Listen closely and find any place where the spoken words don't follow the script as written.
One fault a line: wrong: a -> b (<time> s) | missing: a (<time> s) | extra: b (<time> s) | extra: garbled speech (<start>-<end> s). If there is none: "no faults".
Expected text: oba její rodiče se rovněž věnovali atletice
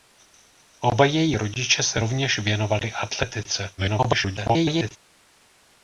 extra: garbled speech (3.8-5.0 s)